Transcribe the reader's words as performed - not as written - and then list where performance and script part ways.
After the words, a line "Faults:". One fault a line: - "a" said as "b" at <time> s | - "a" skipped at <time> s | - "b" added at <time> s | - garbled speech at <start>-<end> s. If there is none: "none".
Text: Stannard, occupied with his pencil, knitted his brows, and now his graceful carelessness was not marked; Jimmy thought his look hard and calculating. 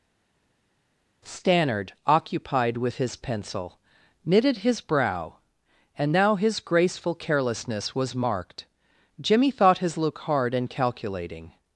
Stannard, occupied with his pencil, knitted his brow, and now his graceful carelessness was marked; Jimmy thought his look hard and calculating.
Faults:
- "brows" said as "brow" at 4.8 s
- "not" skipped at 8.2 s